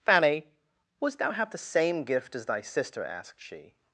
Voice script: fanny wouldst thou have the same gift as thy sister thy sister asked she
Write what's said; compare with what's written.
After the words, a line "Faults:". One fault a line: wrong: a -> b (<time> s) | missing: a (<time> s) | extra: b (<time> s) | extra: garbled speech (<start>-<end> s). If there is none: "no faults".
fanny wouldst thou have the same gift as thy sister asked she
Faults:
missing: thy sister (3.0 s)